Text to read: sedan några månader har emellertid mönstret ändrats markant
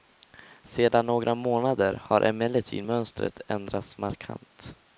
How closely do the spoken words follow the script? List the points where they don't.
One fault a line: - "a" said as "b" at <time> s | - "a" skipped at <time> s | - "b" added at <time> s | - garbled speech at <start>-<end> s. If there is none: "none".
none